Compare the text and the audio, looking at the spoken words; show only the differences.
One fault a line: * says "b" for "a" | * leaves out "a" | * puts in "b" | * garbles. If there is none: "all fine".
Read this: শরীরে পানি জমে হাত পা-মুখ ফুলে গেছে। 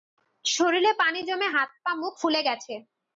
all fine